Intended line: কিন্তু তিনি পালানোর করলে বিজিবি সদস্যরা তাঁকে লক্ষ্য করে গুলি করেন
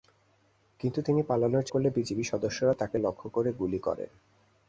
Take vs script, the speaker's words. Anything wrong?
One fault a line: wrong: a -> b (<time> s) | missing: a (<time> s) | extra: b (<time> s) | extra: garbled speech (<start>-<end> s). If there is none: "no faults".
no faults